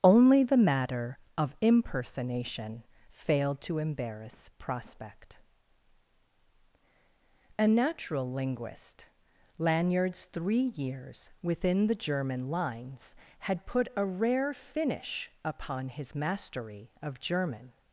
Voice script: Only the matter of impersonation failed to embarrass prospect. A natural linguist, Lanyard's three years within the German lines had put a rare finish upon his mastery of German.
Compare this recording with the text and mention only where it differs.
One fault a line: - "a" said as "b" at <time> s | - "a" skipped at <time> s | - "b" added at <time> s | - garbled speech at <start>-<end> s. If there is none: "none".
none